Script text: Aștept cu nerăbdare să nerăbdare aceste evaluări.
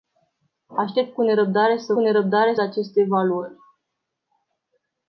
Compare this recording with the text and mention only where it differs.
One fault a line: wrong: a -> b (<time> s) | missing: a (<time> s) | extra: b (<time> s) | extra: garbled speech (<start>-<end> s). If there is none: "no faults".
no faults